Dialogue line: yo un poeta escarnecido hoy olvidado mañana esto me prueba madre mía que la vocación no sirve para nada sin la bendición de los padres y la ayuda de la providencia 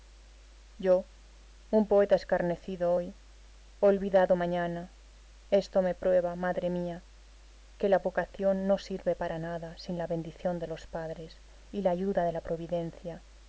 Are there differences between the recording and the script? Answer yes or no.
no